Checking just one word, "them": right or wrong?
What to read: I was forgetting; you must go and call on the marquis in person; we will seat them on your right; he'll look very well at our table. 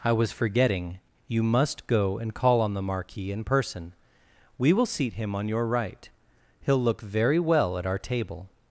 wrong